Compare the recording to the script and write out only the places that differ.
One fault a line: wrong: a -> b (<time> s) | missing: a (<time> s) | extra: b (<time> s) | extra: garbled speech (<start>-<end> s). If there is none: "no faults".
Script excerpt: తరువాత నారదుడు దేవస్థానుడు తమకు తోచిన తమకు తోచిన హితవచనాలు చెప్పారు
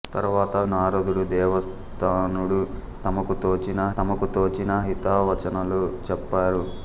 no faults